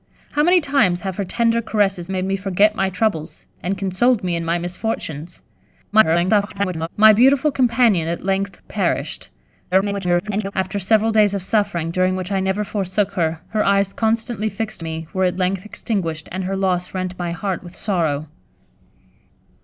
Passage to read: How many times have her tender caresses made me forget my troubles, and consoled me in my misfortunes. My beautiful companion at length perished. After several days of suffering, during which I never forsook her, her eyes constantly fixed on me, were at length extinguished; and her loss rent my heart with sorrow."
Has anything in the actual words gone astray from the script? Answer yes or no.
yes